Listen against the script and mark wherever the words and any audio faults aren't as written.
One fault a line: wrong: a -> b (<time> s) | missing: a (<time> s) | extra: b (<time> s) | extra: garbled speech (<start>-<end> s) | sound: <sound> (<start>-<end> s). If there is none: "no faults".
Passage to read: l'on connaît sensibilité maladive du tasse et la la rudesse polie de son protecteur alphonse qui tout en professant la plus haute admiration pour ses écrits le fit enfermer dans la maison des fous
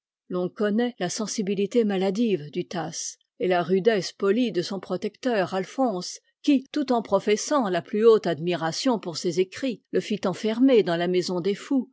extra: la (1.0 s)
missing: la (3.6 s)